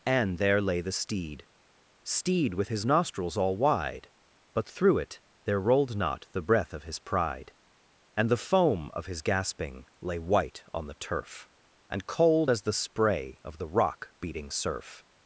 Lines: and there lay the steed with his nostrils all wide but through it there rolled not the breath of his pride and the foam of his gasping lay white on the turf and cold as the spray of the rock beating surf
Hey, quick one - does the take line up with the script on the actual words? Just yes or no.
no